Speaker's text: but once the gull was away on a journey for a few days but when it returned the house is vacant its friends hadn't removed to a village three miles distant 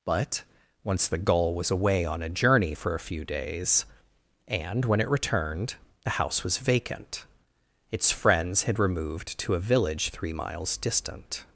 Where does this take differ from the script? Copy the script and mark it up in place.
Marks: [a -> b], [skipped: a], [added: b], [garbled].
but once the gull was away on a journey for a few days [but -> and] when it returned the house [is -> was] vacant its friends [hadn't -> had] removed to a village three miles distant